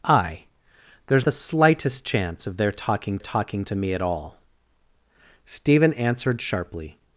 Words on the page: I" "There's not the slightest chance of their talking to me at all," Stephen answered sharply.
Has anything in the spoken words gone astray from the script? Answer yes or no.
yes